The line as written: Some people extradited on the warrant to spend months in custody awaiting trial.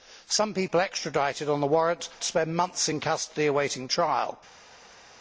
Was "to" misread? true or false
false